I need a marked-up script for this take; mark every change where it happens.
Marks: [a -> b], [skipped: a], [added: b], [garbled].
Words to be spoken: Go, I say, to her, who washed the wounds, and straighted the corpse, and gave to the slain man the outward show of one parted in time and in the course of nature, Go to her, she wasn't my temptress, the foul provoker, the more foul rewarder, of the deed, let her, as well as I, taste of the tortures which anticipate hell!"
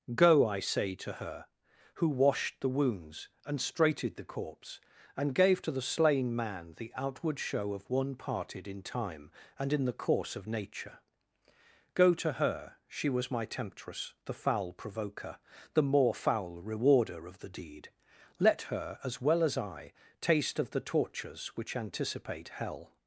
Go, I say, to her, who washed the wounds, and straighted the corpse, and gave to the slain man the outward show of one parted in time and in the course of nature, Go to her, she [wasn't -> was] my temptress, the foul provoker, the more foul rewarder, of the deed, let her, as well as I, taste of the tortures which anticipate hell!"